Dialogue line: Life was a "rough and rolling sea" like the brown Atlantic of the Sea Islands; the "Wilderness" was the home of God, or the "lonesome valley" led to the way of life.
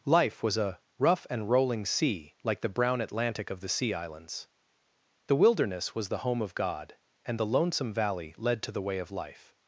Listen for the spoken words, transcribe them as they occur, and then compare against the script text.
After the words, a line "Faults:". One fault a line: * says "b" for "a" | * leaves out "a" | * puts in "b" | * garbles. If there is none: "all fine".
Life was a "rough and rolling sea" like the brown Atlantic of the Sea Islands; the "Wilderness" was the home of God, and the "lonesome valley" led to the way of life.
Faults:
* says "and" for "or"